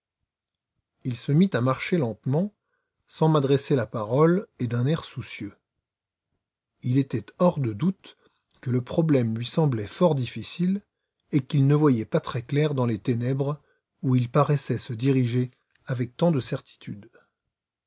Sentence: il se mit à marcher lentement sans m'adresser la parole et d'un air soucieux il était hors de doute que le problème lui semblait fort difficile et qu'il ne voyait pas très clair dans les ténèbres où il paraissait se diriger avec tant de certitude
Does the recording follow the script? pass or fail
pass